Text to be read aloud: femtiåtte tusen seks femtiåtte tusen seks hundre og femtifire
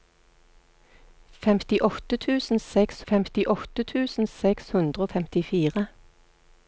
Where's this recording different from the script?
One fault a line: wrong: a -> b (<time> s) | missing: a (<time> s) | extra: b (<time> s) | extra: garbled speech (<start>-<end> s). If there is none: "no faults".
no faults